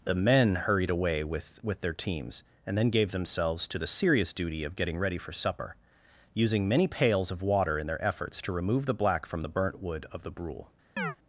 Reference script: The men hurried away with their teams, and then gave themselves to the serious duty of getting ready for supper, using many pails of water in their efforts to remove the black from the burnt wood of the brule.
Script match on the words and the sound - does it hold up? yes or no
no